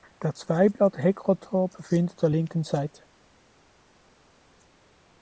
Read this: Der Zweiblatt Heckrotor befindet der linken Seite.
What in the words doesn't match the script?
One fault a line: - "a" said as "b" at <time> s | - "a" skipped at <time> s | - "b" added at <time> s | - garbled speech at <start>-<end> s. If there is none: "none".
none